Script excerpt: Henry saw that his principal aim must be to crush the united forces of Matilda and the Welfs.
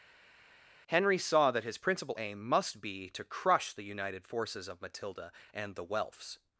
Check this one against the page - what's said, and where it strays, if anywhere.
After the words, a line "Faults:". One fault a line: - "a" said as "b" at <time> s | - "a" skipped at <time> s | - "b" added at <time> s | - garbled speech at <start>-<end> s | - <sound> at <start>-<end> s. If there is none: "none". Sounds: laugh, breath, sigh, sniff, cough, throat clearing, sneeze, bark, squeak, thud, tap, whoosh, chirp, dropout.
Henry saw that his principal aim must be to crush the united forces of Matilda and the Welfs.
Faults:
none